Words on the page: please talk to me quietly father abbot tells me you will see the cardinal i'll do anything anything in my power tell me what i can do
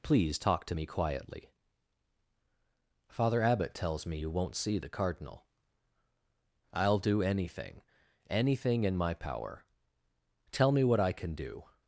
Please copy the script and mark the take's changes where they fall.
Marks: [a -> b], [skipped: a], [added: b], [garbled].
please talk to me quietly father abbot tells me you [will -> won't] see the cardinal i'll do anything anything in my power tell me what i can do